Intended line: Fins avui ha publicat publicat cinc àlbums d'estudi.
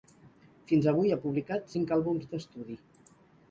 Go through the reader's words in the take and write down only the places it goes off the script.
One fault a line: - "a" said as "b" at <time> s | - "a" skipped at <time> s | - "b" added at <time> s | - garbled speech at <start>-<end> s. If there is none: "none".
- "publicat" skipped at 1.7 s